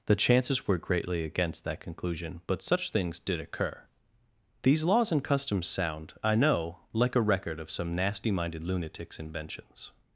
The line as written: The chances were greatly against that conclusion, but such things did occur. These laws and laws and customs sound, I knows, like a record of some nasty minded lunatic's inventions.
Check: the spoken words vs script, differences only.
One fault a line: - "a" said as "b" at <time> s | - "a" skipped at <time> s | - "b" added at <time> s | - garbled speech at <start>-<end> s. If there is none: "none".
- "laws and" skipped at 5.2 s
- "knows" said as "know" at 6.3 s